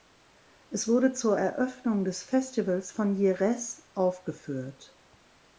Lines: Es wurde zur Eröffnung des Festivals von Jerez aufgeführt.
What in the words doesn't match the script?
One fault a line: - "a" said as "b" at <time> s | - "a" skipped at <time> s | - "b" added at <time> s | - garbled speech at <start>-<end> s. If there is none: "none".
none